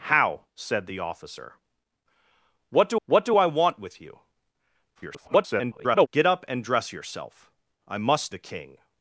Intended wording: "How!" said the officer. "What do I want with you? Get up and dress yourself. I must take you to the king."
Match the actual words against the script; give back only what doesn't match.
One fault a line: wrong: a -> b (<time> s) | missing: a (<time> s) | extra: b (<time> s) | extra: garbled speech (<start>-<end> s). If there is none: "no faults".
extra: what do (3.1 s)
extra: garbled speech (4.9-6.1 s)
missing: take you to (8.3 s)